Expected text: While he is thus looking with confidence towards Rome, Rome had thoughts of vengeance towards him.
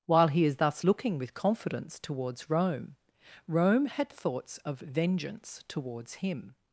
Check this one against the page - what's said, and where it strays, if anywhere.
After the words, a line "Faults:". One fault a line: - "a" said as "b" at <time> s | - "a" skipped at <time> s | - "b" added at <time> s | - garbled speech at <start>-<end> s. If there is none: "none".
While he is thus looking with confidence towards Rome, Rome had thoughts of vengeance towards him.
Faults:
none